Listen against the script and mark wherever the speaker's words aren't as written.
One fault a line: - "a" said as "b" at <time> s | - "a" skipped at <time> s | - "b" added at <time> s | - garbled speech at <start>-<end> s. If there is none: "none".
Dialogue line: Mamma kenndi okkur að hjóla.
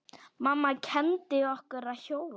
none